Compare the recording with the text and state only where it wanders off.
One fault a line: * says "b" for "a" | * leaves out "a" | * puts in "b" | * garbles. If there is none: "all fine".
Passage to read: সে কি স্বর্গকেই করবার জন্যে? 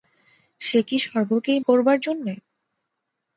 all fine